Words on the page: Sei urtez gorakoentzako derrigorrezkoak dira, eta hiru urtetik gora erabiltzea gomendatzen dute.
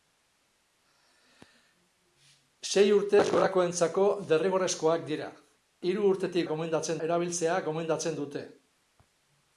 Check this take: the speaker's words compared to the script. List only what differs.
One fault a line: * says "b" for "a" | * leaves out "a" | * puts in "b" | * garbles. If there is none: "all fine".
* leaves out "eta"
* says "gomendatzen" for "gora"